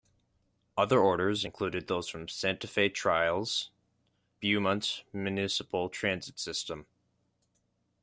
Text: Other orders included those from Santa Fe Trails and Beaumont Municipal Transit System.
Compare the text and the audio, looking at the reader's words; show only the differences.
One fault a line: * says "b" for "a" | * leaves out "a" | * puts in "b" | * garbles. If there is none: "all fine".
* leaves out "and"